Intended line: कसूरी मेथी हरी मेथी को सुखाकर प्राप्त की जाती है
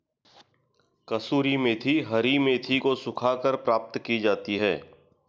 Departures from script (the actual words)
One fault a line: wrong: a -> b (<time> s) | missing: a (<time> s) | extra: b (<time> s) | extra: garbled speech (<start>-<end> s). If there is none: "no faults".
no faults